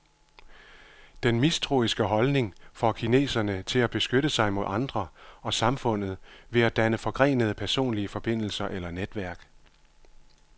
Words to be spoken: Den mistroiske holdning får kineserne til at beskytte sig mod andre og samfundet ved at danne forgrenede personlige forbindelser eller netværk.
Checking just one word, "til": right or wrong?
right